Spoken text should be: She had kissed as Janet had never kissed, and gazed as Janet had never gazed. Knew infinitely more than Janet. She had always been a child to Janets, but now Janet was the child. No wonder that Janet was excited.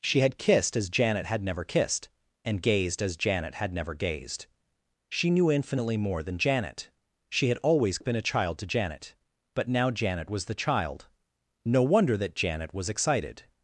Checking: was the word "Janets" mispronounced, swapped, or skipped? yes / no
yes